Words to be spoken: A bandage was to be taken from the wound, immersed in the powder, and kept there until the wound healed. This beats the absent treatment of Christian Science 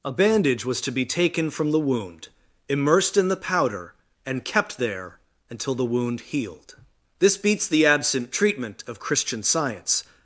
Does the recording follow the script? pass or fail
pass